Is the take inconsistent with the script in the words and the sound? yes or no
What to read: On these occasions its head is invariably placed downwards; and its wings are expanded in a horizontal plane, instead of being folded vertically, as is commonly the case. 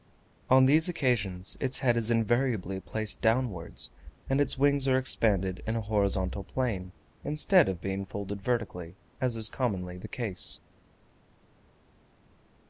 no